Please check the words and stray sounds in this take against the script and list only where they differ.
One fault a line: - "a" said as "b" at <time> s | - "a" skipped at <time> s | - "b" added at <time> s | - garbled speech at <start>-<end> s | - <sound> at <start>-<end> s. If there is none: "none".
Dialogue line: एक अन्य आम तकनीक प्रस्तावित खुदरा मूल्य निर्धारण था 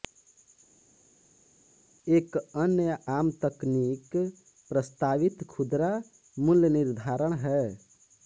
- "था" said as "है" at 7.5 s